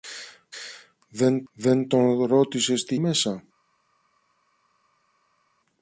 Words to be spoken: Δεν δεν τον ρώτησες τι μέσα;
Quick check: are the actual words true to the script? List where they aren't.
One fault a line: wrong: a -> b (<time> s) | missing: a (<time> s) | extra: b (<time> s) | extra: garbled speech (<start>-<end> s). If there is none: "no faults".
no faults